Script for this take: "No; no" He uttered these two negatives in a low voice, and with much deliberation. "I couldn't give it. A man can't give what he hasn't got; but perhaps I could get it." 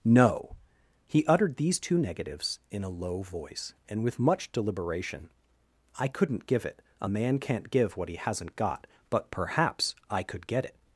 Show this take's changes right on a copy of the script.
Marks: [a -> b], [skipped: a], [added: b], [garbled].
"No; [skipped: no"] He uttered these two negatives in a low voice, and with much deliberation. "I couldn't give it. A man can't give what he hasn't got; but perhaps I could get it."